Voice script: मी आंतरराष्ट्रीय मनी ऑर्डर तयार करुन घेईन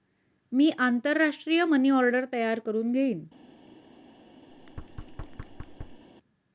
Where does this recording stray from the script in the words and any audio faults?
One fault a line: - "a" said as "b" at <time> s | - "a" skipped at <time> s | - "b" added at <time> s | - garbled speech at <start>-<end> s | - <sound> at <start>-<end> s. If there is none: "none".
- thud at 4.5-6.0 s